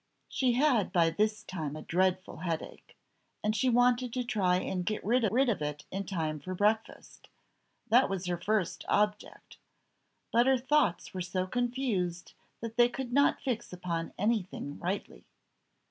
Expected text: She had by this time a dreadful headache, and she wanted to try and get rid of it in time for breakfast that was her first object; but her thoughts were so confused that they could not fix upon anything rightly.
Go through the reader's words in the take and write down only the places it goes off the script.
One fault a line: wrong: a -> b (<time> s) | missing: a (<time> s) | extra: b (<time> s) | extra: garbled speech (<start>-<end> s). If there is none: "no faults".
extra: rid (5.3 s)